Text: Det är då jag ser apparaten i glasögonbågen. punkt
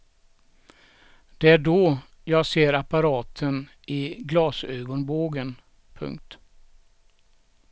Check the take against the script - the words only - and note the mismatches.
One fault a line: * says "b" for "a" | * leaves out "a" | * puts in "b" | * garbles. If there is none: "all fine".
all fine